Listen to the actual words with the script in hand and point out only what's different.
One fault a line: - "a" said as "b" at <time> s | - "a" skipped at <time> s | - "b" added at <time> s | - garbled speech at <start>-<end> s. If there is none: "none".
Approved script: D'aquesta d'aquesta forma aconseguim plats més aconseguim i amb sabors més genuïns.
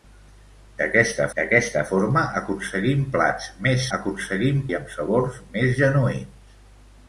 none